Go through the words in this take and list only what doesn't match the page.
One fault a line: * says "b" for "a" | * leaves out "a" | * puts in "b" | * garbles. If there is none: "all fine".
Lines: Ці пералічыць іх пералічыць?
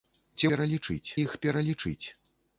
all fine